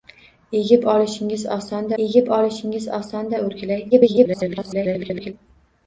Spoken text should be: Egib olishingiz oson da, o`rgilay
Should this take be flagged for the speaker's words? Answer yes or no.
yes